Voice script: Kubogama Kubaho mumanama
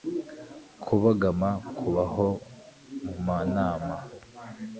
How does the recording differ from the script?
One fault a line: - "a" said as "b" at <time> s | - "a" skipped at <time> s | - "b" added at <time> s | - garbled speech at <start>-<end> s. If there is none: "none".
none